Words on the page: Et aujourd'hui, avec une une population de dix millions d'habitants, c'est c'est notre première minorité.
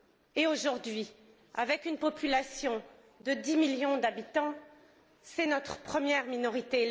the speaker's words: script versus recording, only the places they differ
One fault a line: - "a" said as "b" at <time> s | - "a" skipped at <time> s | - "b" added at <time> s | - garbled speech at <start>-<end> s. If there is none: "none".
- "une" skipped at 2.0 s
- "c'est" skipped at 5.5 s